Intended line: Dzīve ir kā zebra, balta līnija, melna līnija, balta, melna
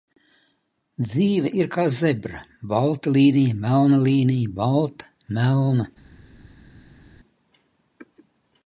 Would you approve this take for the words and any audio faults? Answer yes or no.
yes